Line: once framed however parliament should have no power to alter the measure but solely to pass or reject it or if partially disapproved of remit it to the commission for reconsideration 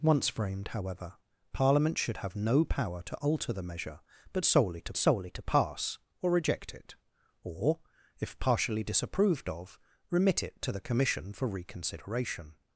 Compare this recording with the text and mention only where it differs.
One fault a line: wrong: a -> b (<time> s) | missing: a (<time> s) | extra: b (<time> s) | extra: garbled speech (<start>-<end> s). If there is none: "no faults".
extra: solely to (5.0 s)